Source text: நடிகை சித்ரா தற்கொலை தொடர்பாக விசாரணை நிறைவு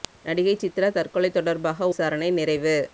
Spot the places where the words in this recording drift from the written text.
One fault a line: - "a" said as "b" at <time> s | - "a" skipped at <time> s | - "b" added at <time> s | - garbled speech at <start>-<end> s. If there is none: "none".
none